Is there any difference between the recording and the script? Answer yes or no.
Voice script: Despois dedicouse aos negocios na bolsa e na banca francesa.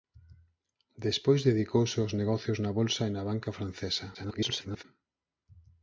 yes